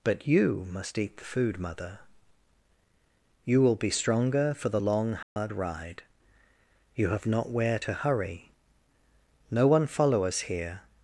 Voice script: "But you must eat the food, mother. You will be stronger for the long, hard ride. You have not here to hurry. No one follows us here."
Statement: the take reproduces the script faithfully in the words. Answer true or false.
false